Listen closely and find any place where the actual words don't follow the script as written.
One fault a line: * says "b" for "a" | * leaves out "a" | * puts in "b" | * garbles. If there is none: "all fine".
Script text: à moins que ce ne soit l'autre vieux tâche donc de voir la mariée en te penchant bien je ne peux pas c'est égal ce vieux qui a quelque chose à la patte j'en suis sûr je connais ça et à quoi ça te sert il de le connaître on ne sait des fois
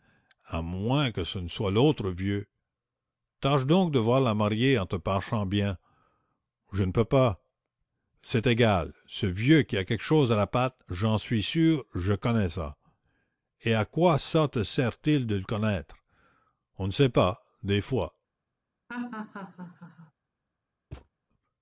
* puts in "pas"